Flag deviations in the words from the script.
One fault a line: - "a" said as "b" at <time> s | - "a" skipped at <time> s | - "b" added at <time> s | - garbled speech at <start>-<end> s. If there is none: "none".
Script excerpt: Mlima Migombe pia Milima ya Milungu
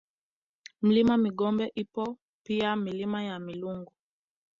- "ipo" added at 1.8 s